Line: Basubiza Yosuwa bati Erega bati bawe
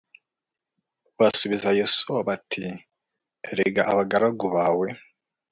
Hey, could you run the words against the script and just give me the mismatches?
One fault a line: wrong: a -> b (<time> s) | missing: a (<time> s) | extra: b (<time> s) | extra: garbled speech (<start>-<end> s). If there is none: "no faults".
wrong: bati -> abagaragu (3.9 s)